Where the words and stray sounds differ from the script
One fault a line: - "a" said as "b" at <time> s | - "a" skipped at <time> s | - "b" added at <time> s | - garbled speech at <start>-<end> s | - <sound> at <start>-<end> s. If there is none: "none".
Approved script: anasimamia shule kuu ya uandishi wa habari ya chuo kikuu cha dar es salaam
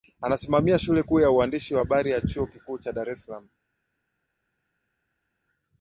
none